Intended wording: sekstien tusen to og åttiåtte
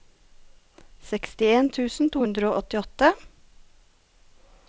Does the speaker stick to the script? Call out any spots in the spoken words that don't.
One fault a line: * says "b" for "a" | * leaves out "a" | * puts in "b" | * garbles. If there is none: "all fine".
* puts in "hundre"